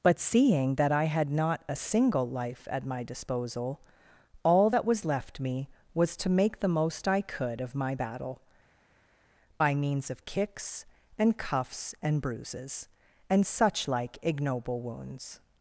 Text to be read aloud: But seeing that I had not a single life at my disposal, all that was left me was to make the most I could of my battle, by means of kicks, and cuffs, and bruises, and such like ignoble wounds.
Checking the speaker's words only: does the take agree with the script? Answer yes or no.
yes